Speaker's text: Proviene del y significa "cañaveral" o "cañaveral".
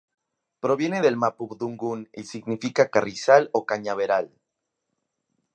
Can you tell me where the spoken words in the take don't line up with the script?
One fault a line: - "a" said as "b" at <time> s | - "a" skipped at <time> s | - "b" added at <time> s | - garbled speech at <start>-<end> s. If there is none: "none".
- "mapudungun" added at 1.2 s
- "cañaveral" said as "carrizal" at 2.9 s